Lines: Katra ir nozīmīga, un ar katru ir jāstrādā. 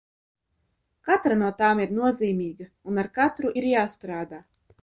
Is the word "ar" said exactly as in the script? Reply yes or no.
yes